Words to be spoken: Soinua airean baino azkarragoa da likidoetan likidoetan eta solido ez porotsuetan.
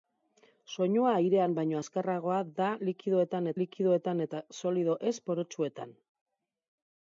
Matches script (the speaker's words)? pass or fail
pass